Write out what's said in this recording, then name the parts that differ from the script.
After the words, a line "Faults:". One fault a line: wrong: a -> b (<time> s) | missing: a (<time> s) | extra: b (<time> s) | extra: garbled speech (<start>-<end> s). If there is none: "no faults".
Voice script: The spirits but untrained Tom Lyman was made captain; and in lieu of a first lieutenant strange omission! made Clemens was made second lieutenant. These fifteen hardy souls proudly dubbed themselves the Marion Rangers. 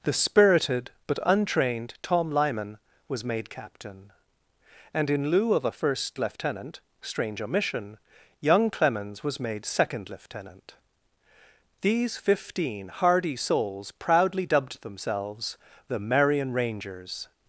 The spirited but untrained Tom Lyman was made captain; and in lieu of a first lieutenant strange omission! young Clemens was made second lieutenant. These fifteen hardy souls proudly dubbed themselves the Marion Rangers.
Faults:
wrong: spirits -> spirited (0.1 s)
wrong: made -> young (8.4 s)